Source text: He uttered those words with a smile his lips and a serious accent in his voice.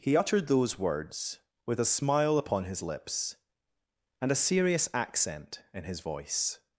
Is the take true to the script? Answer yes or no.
no